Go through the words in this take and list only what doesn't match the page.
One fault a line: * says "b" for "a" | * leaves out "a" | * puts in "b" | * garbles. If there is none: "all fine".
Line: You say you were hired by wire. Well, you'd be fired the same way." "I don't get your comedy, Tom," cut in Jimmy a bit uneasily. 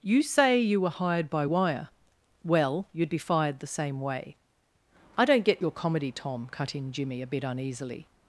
all fine